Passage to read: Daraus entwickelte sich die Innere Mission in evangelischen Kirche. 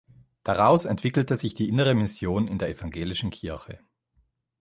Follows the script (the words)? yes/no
no